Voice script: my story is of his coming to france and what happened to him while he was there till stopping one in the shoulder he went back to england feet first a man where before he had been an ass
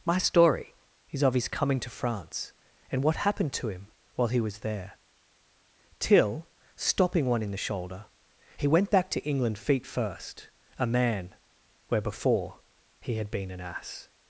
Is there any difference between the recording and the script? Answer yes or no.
no